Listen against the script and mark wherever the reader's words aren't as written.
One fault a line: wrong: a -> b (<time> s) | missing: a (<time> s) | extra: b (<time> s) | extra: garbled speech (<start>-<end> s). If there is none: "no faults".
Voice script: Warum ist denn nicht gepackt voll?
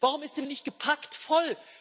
no faults